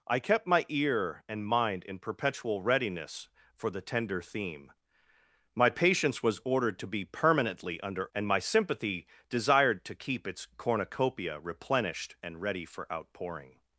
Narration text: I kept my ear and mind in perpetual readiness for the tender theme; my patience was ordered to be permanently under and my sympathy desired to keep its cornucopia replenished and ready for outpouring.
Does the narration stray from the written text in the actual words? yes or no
no